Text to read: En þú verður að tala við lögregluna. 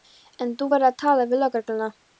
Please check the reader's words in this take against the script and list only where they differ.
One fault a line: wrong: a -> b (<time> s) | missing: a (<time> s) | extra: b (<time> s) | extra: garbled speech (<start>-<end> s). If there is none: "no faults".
no faults